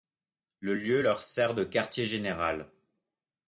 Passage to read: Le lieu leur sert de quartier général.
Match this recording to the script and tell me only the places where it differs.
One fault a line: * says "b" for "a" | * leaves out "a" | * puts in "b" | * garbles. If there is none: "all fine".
all fine